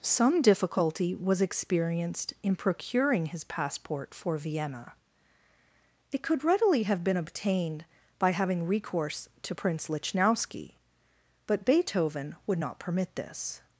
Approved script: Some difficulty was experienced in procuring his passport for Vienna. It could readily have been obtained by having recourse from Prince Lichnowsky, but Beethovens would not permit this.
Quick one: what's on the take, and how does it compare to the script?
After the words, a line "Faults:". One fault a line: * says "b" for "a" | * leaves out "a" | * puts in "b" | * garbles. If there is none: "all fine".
Some difficulty was experienced in procuring his passport for Vienna. It could readily have been obtained by having recourse to Prince Lichnowsky, but Beethoven would not permit this.
Faults:
* says "to" for "from"
* says "Beethoven" for "Beethovens"